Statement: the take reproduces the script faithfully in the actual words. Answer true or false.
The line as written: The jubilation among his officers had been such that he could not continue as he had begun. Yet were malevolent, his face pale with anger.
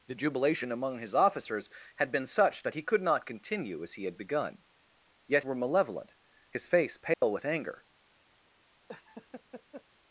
true